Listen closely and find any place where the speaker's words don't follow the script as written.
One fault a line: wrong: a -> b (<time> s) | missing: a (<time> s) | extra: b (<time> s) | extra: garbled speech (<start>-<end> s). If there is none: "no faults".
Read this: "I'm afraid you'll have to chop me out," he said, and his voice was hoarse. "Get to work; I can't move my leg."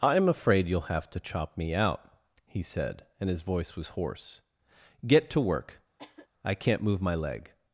no faults